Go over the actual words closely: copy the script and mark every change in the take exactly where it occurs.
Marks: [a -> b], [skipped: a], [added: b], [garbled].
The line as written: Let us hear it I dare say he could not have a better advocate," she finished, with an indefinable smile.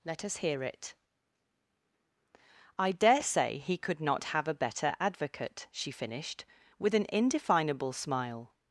Let us hear it I dare say he could not have a better advocate," she finished, with an indefinable smile.